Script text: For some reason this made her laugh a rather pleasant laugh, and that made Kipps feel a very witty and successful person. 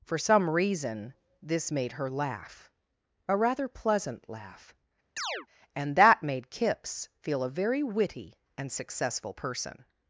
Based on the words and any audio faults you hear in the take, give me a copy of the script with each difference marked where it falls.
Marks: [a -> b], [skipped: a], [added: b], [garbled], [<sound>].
For some reason this made her laugh a rather pleasant laugh, [chirp] and that made Kipps feel a very witty and successful person.